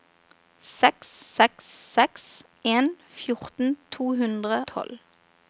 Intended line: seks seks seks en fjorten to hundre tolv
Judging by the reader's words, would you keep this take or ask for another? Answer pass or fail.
pass